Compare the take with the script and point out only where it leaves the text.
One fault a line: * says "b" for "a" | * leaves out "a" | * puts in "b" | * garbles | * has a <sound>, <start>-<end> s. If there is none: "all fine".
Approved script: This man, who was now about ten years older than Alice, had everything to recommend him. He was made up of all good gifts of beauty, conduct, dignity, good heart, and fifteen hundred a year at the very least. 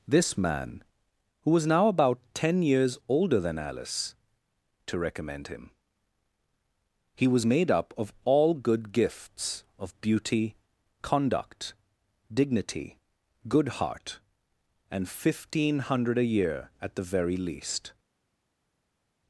* leaves out "had everything"